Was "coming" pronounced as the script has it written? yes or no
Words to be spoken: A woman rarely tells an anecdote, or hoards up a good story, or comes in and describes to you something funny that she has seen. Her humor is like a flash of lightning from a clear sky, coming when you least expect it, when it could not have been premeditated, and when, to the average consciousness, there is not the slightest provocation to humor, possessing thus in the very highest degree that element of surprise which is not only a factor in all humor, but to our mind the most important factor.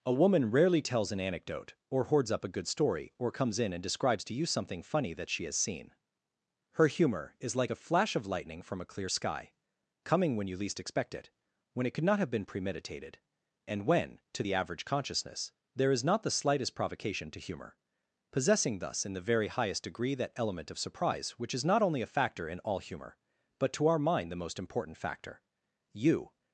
yes